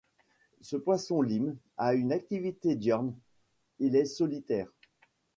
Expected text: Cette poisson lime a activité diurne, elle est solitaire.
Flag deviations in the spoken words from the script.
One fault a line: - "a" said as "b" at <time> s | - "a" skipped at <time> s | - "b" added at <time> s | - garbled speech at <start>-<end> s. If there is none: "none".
- "Cette" said as "Ce" at 0.6 s
- "une" added at 1.9 s
- "elle" said as "il" at 3.8 s